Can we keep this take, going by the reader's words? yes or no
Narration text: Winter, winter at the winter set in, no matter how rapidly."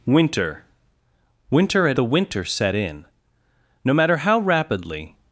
yes